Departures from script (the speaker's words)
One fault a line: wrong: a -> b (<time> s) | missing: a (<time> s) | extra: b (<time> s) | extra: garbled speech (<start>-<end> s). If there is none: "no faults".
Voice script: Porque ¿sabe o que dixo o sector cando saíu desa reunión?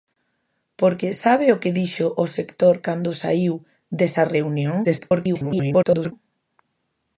extra: garbled speech (4.8-6.1 s)